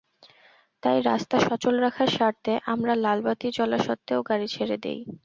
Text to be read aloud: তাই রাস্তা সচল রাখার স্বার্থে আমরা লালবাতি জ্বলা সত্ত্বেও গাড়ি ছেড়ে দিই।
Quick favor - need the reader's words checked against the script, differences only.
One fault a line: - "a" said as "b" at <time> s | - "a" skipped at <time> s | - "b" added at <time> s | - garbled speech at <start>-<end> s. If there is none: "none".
none